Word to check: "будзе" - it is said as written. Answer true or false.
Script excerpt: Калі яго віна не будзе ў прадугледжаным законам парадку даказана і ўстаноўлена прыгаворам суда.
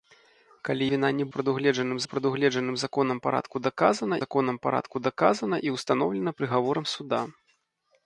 false